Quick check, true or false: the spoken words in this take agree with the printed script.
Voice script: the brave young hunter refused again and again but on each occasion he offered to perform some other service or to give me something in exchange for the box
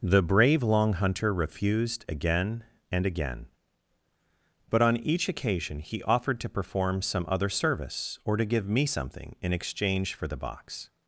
false